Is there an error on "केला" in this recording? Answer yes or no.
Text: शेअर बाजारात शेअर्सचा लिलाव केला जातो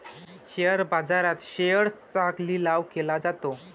no